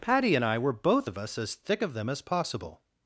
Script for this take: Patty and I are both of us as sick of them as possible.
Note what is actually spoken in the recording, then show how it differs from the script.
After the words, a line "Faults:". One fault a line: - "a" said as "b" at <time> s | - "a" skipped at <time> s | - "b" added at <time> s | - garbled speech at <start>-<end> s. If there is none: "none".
Patty and I were both of us as thick of them as possible.
Faults:
- "are" said as "were" at 0.6 s
- "sick" said as "thick" at 1.6 s